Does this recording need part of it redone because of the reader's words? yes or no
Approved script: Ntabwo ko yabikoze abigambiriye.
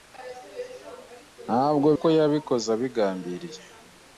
no